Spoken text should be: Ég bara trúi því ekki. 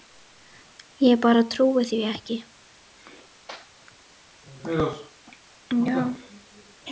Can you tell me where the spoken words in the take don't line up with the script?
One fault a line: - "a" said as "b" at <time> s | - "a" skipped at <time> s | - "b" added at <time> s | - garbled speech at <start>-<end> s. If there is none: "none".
none